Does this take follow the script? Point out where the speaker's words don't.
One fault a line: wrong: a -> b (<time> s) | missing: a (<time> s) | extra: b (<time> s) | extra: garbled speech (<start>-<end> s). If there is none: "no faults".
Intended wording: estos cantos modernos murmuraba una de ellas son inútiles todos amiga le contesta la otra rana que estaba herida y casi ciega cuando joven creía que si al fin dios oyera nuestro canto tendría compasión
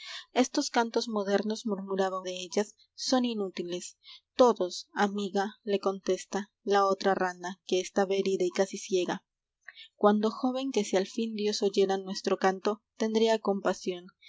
missing: una (2.2 s)
missing: creía (10.7 s)